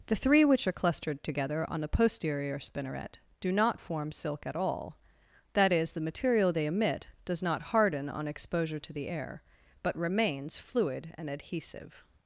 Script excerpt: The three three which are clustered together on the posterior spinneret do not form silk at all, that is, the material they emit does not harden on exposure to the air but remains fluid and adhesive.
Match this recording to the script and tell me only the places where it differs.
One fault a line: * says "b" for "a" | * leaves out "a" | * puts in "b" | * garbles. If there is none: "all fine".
* leaves out "three"